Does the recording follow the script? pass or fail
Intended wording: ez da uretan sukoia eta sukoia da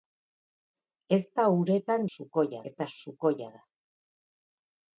pass